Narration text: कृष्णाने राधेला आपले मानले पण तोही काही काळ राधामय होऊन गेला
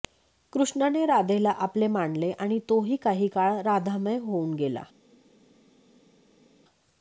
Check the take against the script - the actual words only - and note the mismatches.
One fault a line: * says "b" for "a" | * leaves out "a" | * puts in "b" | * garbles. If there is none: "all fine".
* says "आणि" for "पण"